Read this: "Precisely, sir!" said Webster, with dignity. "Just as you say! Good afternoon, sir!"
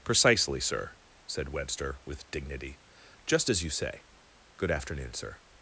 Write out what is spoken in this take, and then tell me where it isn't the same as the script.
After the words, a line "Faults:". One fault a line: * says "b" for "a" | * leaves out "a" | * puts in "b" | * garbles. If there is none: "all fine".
"Precisely, sir!" said Webster, with dignity. "Just as you say! Good afternoon, sir!"
Faults:
all fine